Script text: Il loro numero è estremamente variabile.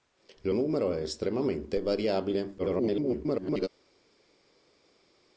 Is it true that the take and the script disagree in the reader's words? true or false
true